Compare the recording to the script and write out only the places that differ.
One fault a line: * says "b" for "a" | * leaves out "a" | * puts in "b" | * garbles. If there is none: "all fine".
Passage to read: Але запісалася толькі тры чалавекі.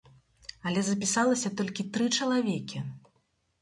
all fine